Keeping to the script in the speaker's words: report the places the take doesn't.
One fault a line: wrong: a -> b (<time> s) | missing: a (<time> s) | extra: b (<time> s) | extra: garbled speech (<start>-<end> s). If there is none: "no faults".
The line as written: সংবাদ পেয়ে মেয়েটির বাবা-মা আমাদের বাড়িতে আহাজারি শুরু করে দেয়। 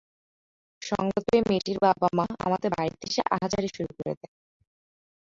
extra: এসে (3.0 s)